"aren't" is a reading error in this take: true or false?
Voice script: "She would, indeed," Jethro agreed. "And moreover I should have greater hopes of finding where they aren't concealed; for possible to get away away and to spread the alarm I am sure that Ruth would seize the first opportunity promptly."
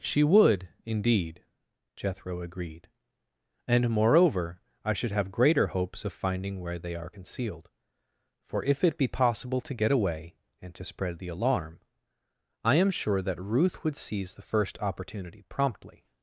true